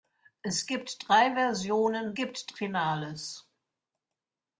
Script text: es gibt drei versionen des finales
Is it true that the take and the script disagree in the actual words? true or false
true